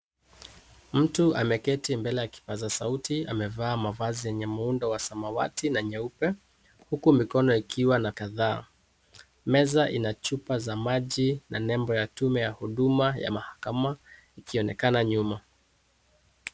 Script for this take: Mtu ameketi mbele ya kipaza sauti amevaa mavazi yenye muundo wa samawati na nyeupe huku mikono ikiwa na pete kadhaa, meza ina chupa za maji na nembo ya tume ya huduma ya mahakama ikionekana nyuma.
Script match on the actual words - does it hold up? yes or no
no